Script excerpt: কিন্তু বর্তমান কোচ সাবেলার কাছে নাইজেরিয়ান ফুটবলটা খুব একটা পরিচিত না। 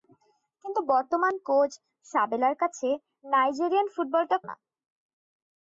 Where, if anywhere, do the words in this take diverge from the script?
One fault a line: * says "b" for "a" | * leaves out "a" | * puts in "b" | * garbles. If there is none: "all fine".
* leaves out "খুব একটা পরিচিত"